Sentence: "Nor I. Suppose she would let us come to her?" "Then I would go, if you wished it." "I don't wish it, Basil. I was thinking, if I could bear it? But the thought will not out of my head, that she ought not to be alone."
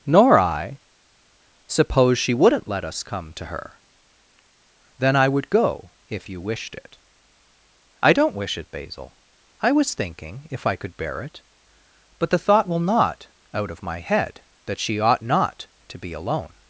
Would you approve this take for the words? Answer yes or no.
no